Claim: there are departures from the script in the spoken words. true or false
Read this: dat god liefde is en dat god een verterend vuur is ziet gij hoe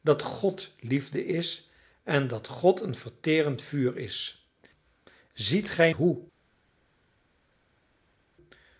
false